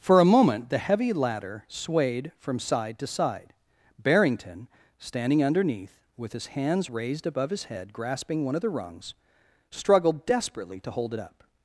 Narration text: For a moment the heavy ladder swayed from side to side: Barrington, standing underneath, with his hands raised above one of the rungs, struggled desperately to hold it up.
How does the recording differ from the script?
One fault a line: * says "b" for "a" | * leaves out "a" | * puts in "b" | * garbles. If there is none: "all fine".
* puts in "his head grasping"